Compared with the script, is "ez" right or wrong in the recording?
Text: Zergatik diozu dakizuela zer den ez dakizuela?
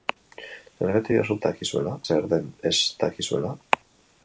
right